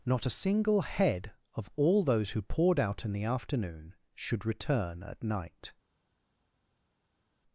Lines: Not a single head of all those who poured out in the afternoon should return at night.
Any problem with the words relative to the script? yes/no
no